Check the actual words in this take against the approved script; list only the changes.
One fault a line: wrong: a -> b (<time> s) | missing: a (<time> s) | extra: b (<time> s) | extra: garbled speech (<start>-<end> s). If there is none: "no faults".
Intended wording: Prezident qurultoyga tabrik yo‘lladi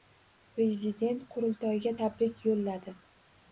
no faults